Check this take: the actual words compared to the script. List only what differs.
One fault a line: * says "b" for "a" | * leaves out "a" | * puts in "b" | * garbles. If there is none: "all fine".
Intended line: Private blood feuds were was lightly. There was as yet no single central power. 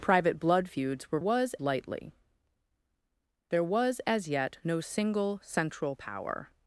all fine